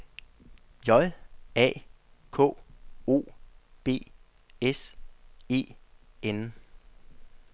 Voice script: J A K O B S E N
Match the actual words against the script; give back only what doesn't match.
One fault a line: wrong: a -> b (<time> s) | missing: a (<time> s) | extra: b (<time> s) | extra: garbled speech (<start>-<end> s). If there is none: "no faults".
no faults